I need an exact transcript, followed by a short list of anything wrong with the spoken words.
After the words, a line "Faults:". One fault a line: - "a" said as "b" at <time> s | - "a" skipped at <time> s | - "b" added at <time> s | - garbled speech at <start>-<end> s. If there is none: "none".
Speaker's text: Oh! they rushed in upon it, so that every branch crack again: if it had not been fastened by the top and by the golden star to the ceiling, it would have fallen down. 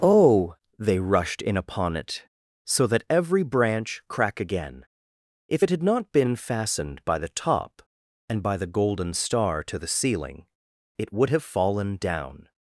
Oh! they rushed in upon it, so that every branch crack again: if it had not been fastened by the top and by the golden star to the ceiling, it would have fallen down.
Faults:
none